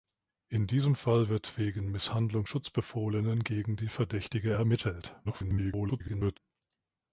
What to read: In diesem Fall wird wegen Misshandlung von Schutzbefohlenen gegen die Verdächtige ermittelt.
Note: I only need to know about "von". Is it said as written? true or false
false